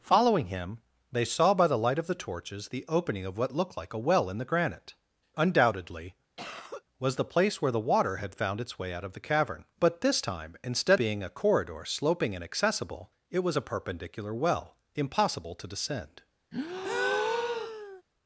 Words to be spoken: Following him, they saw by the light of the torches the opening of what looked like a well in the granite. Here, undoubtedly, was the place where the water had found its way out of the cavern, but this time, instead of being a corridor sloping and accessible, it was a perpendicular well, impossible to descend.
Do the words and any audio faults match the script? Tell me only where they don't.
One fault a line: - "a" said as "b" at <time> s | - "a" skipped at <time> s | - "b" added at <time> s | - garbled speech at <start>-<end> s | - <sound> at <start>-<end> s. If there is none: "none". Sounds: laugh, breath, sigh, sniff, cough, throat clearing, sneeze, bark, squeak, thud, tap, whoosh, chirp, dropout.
- "Here" skipped at 4.9 s
- cough at 6.4-6.8 s
- "of" skipped at 11.0 s
- breath at 16.5-18.0 s